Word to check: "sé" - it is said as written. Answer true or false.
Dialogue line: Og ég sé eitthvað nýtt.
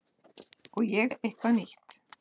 false